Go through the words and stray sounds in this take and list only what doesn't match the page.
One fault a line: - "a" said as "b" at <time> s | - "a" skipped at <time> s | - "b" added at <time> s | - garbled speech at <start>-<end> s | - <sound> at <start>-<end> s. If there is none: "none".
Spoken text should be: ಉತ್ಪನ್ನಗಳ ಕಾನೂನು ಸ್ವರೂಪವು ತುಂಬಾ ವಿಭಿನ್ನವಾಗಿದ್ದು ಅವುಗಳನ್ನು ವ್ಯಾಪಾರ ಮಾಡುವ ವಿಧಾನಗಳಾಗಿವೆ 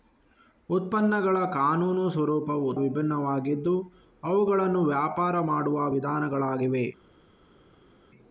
- "ತುಂಬಾ" skipped at 2.7 s